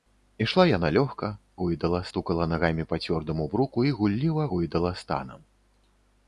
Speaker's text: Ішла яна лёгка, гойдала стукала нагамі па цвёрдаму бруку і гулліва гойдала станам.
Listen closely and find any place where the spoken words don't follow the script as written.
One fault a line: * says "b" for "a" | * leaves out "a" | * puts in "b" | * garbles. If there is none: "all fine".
all fine